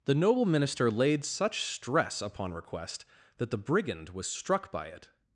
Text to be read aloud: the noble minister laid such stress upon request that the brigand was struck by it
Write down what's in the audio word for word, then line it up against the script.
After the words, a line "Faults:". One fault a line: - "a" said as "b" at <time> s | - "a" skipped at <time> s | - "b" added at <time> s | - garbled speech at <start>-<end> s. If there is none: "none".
the noble minister laid such stress upon request that the brigand was struck by it
Faults:
none